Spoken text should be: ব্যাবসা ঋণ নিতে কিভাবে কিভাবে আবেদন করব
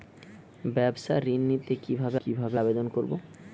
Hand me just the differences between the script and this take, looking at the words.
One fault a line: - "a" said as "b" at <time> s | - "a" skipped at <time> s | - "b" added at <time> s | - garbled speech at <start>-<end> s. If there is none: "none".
none